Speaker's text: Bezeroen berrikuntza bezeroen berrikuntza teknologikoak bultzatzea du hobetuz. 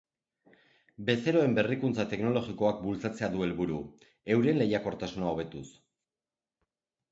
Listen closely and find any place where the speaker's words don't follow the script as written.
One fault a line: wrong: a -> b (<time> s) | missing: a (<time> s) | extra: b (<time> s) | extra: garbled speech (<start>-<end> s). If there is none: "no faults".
missing: bezeroen berrikuntza (2.1 s)
extra: helburu euren lehiakortasuna (3.5 s)